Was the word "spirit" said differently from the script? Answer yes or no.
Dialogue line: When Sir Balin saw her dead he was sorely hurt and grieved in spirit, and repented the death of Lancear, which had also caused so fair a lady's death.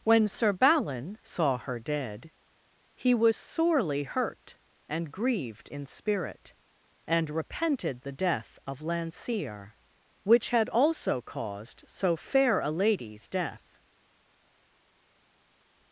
no